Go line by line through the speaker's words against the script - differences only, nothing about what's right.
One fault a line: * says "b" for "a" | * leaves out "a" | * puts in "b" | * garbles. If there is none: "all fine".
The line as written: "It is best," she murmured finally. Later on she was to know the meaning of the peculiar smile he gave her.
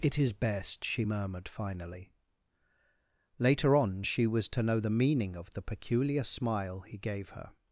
all fine